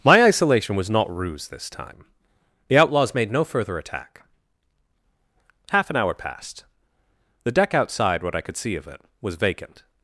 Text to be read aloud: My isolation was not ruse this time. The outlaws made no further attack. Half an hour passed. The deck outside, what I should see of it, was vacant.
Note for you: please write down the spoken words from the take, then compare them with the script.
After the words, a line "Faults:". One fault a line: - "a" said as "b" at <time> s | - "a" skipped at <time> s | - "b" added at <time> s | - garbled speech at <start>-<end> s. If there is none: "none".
My isolation was not ruse this time. The outlaws made no further attack. Half an hour passed. The deck outside, what I could see of it, was vacant.
Faults:
- "should" said as "could" at 8.4 s